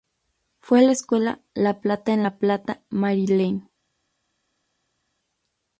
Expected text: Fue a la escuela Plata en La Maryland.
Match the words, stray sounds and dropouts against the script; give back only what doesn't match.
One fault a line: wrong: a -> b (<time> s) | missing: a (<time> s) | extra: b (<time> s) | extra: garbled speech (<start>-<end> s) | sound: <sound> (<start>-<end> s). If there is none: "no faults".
extra: La (1.5 s)
extra: Plata (2.4 s)